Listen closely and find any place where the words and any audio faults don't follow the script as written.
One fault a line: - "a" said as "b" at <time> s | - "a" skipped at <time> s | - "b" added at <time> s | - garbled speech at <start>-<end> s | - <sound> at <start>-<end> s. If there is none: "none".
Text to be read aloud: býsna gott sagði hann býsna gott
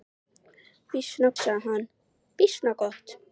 - "gott" skipped at 1.3 s